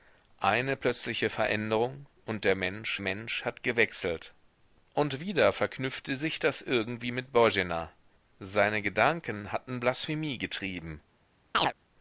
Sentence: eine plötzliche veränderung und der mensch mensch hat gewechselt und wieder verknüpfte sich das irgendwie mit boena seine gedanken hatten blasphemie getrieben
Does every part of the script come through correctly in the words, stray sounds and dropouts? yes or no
no